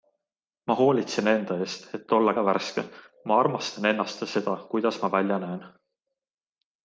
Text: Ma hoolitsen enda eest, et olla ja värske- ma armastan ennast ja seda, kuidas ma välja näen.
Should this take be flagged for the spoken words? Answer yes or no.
no